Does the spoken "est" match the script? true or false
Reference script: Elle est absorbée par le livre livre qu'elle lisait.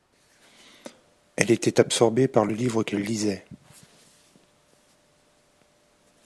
false